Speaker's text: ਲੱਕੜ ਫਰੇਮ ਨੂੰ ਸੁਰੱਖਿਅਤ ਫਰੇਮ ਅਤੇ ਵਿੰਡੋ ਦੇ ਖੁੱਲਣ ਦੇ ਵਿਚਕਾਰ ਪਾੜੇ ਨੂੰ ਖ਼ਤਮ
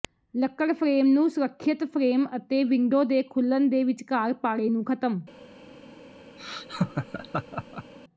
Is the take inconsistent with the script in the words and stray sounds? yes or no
yes